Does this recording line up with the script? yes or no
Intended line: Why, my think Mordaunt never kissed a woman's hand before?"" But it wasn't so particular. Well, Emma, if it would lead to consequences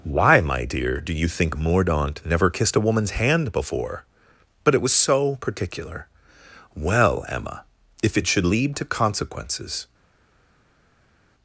no